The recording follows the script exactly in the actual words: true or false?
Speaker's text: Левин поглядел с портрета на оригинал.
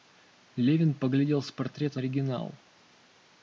false